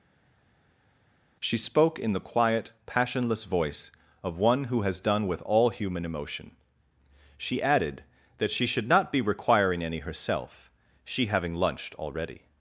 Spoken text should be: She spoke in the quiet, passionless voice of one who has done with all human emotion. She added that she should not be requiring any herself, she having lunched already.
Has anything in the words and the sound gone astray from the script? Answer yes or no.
no